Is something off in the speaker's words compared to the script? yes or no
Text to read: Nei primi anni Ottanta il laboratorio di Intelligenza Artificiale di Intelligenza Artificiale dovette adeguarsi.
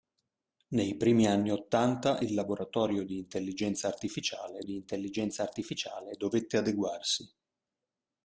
no